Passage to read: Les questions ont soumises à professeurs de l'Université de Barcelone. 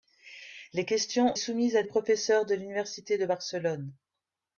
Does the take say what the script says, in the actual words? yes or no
yes